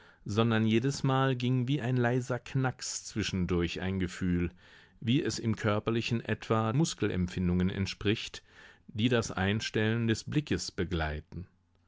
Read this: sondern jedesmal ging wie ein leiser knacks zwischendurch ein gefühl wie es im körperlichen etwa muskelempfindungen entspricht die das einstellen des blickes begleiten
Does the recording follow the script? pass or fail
pass